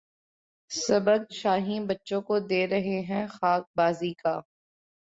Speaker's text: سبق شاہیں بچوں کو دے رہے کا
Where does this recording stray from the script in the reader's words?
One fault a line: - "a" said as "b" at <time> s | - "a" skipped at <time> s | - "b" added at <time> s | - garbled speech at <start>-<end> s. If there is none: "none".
- "ہیں خاک بازی" added at 3.0 s